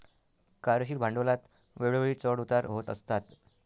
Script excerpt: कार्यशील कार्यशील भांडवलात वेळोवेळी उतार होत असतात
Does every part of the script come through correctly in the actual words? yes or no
no